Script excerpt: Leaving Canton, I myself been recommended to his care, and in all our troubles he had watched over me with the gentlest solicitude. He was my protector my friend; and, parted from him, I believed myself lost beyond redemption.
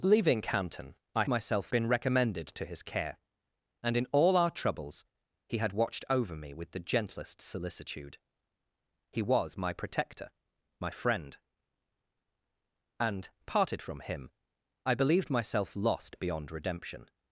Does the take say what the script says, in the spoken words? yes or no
yes